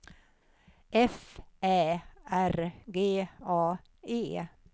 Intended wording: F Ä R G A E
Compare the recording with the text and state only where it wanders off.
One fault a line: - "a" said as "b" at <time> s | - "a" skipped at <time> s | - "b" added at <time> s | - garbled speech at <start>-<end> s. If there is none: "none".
none